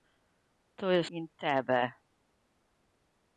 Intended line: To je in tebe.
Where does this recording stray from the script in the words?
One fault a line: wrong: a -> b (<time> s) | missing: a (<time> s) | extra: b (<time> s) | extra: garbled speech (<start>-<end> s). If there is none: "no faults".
no faults